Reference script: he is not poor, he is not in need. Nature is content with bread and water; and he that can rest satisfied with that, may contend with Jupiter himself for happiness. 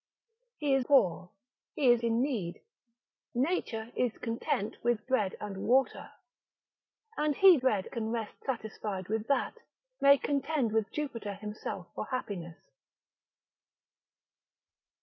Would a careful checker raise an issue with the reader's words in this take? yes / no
yes